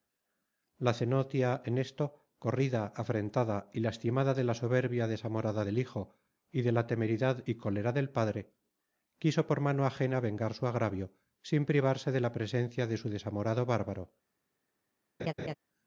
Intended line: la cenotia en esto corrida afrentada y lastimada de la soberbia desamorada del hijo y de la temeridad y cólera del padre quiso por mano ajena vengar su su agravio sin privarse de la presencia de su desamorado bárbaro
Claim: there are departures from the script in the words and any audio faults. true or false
true